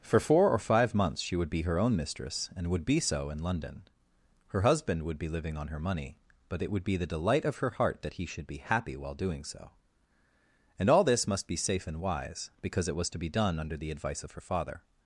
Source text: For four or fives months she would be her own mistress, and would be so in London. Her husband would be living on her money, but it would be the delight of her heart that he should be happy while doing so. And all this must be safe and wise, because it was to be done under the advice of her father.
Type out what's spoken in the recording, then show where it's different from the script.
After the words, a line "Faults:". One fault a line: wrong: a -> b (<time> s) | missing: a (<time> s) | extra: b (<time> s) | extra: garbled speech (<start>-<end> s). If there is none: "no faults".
For four or five months she would be her own mistress, and would be so in London. Her husband would be living on her money, but it would be the delight of her heart that he should be happy while doing so. And all this must be safe and wise, because it was to be done under the advice of her father.
Faults:
wrong: fives -> five (0.6 s)